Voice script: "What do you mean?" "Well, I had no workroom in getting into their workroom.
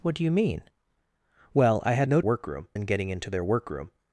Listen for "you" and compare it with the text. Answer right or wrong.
right